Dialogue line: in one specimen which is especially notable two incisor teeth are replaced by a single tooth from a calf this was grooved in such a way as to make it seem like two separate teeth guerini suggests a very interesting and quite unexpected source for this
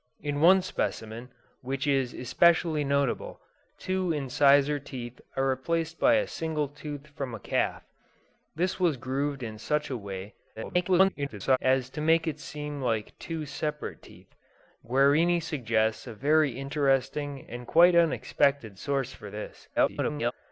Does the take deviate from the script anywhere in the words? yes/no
yes